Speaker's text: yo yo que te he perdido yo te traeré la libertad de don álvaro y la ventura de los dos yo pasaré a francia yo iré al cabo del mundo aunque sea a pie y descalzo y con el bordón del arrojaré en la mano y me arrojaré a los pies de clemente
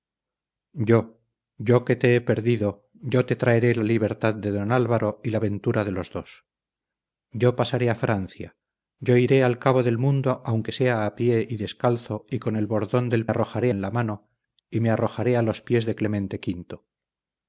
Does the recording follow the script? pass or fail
pass